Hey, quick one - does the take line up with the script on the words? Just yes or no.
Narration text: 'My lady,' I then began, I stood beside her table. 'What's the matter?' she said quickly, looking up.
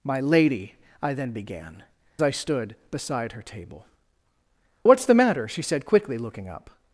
yes